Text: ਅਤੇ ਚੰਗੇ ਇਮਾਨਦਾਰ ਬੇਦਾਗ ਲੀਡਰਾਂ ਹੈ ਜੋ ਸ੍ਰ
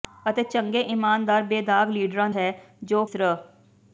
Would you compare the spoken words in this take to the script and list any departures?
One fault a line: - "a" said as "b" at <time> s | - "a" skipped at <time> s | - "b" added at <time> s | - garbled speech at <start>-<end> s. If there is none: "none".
none